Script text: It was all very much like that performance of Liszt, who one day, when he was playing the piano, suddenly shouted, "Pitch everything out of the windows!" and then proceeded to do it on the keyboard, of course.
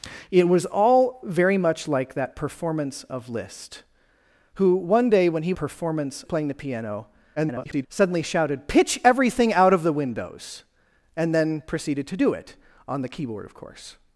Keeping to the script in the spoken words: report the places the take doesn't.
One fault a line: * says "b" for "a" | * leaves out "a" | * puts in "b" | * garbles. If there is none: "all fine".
* says "performance" for "was"
* garbles